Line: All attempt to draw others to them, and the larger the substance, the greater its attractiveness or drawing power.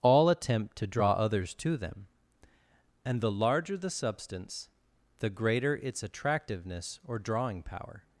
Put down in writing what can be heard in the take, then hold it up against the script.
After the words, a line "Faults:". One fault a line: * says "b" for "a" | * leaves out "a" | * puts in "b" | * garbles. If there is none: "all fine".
All attempt to draw others to them, and the larger the substance, the greater its attractiveness or drawing power.
Faults:
all fine